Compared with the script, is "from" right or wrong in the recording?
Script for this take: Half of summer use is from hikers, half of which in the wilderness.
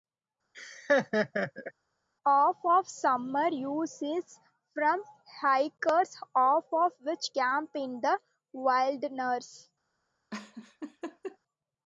right